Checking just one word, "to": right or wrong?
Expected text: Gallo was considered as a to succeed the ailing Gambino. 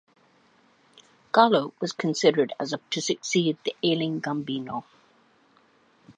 right